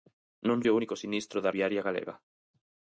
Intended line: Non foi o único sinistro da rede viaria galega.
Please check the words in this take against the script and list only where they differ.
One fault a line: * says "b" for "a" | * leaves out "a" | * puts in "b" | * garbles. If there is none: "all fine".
* leaves out "foi"
* leaves out "rede"